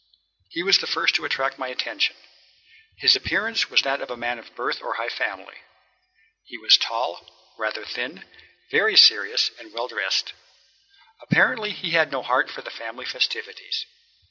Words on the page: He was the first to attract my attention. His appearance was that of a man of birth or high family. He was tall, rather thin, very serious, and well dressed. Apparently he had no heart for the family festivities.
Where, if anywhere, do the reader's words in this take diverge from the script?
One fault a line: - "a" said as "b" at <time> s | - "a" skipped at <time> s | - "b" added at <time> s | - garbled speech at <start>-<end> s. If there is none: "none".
none